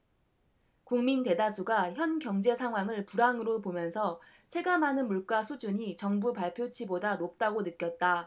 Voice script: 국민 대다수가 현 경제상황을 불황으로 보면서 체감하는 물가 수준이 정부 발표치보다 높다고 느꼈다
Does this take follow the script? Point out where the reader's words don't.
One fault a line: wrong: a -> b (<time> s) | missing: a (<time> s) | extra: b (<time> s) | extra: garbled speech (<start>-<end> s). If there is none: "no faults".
no faults